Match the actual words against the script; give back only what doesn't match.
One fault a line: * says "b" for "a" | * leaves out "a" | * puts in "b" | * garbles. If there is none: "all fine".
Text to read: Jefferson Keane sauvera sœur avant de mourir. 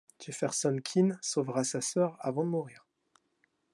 * puts in "sa"